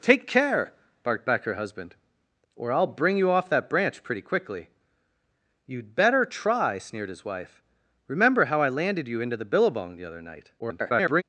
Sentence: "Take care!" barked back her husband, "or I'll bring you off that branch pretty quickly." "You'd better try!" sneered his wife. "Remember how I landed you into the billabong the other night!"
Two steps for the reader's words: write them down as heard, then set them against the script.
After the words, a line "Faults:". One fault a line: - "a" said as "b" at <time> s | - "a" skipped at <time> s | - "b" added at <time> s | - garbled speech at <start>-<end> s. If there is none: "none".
"Take care!" barked back her husband, "or I'll bring you off that branch pretty quickly." "You'd better try!" sneered his wife. "Remember how I landed you into the billabong the other night!" [garbled]
Faults:
- garbled speech at 10.6-11.2 s